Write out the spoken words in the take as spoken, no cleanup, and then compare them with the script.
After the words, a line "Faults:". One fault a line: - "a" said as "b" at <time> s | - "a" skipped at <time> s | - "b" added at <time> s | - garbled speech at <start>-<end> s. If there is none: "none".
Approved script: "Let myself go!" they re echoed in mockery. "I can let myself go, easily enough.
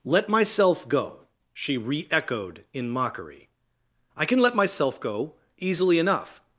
"Let myself go!" she re echoed in mockery. "I can let myself go, easily enough.
Faults:
- "they" said as "she" at 1.5 s